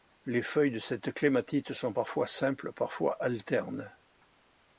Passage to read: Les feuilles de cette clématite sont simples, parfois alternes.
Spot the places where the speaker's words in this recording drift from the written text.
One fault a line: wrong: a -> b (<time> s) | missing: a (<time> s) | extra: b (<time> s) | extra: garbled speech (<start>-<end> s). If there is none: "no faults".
extra: parfois (1.9 s)